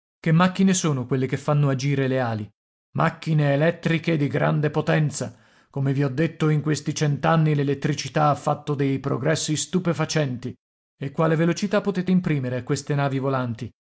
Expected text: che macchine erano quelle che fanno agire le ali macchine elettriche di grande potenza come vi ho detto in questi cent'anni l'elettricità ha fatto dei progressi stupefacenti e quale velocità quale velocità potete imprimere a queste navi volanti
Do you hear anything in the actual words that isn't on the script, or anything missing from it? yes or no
yes